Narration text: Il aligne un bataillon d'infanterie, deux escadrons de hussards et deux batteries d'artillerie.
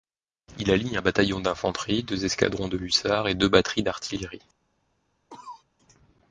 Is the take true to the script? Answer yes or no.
yes